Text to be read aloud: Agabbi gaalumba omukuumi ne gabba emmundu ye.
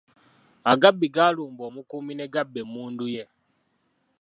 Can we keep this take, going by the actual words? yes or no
yes